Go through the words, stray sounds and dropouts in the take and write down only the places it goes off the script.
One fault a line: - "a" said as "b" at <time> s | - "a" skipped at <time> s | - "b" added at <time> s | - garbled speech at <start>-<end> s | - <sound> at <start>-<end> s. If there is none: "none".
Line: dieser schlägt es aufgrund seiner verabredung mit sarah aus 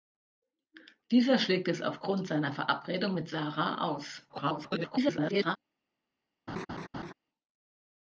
- garbled speech at 4.3-5.6 s
- laugh at 6.5-7.1 s